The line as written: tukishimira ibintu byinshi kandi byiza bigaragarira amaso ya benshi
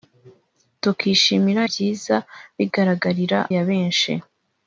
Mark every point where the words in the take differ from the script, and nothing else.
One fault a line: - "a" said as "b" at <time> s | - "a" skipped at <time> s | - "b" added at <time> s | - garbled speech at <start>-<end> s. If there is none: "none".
- "ibintu byinshi kandi" skipped at 1.6 s
- "amaso" skipped at 3.4 s